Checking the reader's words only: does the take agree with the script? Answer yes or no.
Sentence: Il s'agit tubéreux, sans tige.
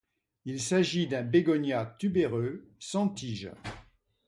no